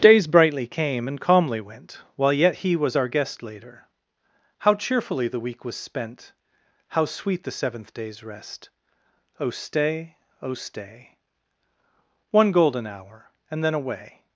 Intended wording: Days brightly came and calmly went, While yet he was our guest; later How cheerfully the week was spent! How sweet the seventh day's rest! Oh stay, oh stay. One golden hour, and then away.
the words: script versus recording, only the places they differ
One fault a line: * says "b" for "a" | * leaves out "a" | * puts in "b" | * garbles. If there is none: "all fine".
all fine